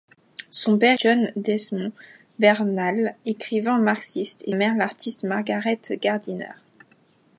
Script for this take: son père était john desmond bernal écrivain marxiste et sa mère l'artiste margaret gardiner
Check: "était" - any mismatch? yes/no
yes